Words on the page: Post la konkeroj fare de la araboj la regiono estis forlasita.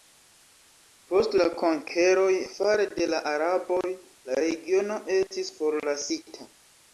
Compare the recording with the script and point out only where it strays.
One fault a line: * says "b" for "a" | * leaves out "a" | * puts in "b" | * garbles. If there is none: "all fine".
all fine